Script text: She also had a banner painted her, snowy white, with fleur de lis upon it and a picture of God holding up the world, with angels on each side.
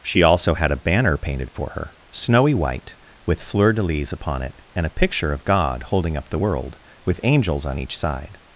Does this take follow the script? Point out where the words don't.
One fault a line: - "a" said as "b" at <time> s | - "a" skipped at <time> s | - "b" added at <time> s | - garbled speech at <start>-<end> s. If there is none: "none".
- "for" added at 1.5 s